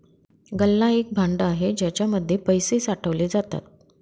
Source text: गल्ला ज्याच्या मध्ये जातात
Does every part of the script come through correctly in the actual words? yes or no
no